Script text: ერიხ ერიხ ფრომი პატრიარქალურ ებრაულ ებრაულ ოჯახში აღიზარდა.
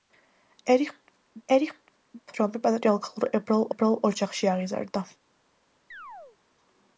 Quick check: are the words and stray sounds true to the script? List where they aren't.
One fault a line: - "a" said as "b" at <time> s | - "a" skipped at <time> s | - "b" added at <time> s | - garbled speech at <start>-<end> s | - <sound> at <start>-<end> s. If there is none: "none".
- chirp at 5.9-6.4 s